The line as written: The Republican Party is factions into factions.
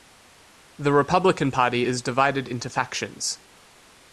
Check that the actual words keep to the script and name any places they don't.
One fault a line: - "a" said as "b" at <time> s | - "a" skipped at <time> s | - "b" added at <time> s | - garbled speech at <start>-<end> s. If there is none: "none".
- "factions" said as "divided" at 2.0 s